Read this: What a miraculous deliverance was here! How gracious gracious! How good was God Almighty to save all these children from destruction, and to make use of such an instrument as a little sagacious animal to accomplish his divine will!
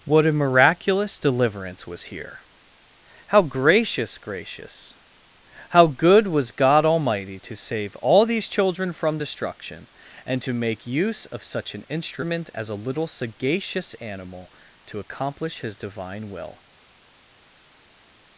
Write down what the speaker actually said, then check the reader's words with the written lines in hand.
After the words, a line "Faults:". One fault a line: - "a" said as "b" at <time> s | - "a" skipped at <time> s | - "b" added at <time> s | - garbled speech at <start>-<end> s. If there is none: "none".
What a miraculous deliverance was here! How gracious gracious! How good was God Almighty to save all these children from destruction, and to make use of such an instrument as a little sagacious animal to accomplish his divine will!
Faults:
none